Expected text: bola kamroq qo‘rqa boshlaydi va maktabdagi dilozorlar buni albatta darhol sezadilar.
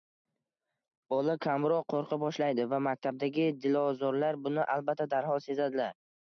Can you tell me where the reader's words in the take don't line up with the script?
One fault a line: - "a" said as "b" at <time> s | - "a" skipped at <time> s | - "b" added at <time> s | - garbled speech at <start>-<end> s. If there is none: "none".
none